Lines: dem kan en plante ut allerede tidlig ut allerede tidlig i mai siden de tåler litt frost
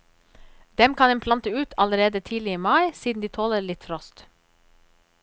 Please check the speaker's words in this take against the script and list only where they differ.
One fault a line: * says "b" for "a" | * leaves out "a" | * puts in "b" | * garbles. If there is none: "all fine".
* leaves out "ut allerede tidlig"